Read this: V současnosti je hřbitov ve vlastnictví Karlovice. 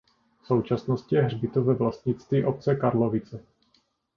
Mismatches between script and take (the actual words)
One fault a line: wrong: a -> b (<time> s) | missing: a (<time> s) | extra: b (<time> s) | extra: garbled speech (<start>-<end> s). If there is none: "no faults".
extra: obce (2.5 s)